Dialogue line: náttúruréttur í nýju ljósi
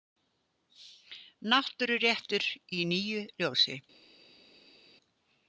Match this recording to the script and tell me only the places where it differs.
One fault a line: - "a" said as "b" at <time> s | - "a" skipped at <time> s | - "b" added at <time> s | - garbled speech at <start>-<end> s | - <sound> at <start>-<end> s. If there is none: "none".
none